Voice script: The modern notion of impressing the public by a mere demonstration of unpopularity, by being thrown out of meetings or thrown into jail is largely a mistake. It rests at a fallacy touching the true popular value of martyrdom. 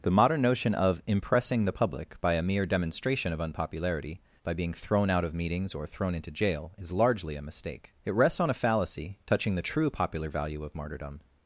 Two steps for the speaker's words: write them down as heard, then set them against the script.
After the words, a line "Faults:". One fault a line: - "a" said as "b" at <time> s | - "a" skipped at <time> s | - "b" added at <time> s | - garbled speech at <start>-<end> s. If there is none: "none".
The modern notion of impressing the public by a mere demonstration of unpopularity, by being thrown out of meetings or thrown into jail is largely a mistake. It rests on a fallacy touching the true popular value of martyrdom.
Faults:
- "at" said as "on" at 8.4 s